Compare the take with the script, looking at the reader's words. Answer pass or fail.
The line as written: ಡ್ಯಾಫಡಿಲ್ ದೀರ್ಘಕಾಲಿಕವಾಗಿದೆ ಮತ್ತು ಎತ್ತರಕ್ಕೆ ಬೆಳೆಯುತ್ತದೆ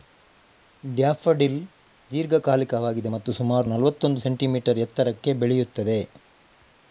fail